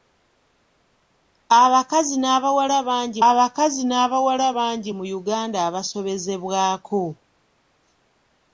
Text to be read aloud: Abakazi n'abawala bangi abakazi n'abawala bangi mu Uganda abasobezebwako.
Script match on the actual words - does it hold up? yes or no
yes